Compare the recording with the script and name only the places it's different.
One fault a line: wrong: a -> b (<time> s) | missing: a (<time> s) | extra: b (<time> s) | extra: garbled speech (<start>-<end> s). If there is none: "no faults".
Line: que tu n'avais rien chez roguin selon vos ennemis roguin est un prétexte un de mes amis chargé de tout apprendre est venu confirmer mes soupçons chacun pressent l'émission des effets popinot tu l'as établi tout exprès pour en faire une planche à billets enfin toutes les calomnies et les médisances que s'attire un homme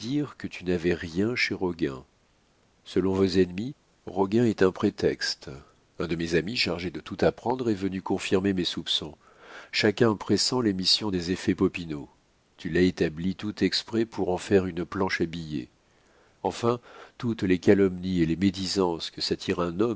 no faults